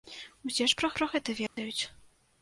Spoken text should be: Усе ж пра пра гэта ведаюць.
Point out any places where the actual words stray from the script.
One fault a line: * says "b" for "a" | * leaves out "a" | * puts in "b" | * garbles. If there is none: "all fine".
all fine